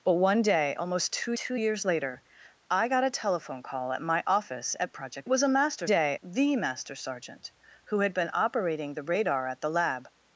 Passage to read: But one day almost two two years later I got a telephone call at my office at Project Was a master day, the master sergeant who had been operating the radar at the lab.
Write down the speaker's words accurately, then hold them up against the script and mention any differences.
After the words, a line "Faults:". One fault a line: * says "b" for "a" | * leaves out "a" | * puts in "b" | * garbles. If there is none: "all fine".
But one day almost two two years later I got a telephone call at my office at Project Was a master day, the master sergeant who had been operating the radar at the lab.
Faults:
all fine